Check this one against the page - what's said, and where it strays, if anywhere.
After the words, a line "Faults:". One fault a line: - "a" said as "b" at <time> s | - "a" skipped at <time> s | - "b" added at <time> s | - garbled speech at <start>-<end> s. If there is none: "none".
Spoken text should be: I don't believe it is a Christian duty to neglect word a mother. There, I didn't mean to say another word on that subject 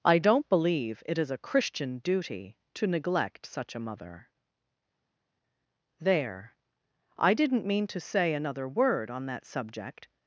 I don't believe it is a Christian duty to neglect such a mother. There, I didn't mean to say another word on that subject
Faults:
- "word" said as "such" at 3.5 s